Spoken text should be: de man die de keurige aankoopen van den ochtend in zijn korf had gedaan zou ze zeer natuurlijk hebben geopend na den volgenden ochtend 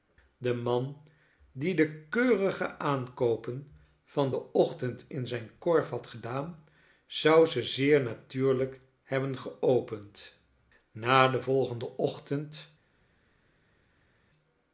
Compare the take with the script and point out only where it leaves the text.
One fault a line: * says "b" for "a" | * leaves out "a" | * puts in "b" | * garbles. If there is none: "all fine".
all fine